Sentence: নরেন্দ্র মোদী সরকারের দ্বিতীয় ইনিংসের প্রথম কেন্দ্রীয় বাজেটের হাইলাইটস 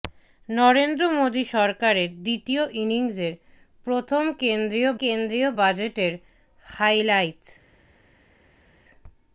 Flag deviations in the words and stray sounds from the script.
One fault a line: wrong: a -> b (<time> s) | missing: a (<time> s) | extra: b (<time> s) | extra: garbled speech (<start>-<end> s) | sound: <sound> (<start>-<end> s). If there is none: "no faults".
extra: কেন্দ্রীয় (5.0 s)